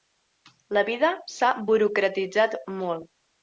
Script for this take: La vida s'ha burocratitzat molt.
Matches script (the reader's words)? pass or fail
pass